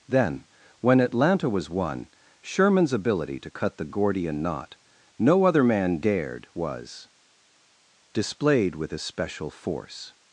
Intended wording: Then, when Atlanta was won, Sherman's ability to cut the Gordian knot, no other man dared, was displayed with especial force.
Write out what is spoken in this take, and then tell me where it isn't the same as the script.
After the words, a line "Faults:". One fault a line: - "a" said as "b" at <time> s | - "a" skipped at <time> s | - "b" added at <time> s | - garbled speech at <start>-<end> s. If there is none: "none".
Then, when Atlanta was won, Sherman's ability to cut the Gordian knot, no other man dared, was displayed with especial force.
Faults:
none